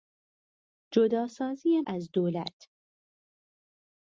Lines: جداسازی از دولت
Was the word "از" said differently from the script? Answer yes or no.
no